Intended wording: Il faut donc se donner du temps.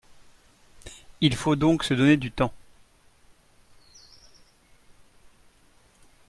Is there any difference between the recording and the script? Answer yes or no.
no